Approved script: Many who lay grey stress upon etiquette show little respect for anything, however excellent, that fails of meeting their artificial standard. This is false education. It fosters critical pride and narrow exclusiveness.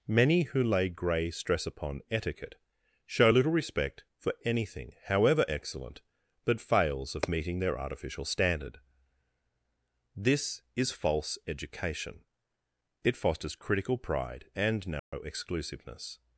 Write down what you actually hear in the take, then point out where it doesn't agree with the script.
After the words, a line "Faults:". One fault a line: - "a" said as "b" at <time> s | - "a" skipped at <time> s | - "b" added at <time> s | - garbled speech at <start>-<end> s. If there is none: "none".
Many who lay grey stress upon etiquette show little respect for anything, however excellent, that fails of meeting their artificial standard. This is false education. It fosters critical pride and narrow exclusiveness.
Faults:
none